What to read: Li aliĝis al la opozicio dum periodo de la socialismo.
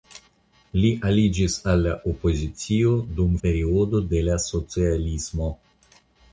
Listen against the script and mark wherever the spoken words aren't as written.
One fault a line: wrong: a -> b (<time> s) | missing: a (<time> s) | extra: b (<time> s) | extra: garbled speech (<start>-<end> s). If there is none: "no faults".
no faults